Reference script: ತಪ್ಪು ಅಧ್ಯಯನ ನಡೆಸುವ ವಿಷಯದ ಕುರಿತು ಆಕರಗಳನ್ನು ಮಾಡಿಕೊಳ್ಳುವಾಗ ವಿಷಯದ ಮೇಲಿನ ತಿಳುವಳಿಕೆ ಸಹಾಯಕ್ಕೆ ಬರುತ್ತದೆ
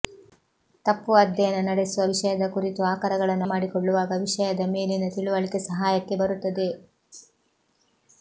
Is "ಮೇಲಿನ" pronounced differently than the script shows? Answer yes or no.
no